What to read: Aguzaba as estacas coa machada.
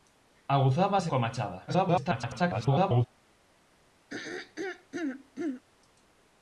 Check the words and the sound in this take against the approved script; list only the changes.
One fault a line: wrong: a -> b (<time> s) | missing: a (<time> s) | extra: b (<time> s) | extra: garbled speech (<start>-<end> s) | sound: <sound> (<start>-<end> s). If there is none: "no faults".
missing: estacas (1.0 s)
extra: garbled speech (1.7-3.1 s)
sound: throat clearing (4.1-5.6 s)